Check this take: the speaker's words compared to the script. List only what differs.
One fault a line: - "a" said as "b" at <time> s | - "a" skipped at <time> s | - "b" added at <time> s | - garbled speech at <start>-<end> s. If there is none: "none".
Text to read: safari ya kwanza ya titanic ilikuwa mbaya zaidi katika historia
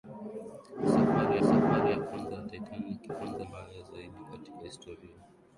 - "safari" added at 1.5 s
- "ilikuwa" said as "kwanza" at 3.1 s